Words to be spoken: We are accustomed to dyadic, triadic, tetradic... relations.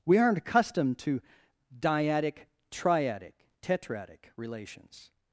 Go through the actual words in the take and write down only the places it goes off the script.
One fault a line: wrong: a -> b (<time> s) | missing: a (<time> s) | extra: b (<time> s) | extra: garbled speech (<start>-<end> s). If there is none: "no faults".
wrong: are -> aren't (0.2 s)